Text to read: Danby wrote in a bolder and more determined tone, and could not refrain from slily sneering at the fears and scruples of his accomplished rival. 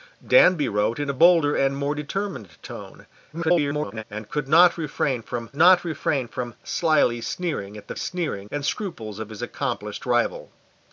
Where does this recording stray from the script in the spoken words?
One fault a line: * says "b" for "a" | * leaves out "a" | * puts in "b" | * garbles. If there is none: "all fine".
* garbles
* puts in "not refrain from"
* says "sneering" for "fears"